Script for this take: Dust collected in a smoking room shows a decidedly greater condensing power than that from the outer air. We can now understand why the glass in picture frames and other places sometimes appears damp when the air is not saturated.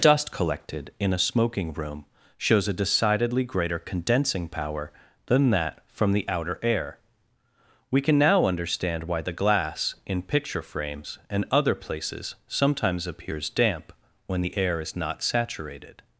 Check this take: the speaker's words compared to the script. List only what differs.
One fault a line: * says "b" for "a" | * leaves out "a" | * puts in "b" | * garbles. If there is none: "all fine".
all fine